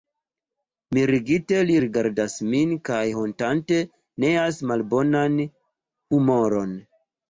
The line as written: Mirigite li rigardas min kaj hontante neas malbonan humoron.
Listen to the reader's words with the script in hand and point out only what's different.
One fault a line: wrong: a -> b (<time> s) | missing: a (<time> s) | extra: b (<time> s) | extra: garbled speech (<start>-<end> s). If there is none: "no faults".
no faults